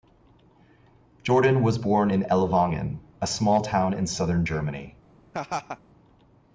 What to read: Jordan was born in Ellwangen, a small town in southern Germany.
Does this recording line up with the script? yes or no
yes